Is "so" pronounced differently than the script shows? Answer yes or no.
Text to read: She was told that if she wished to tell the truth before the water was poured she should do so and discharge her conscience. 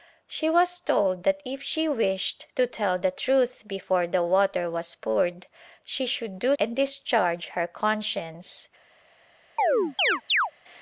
yes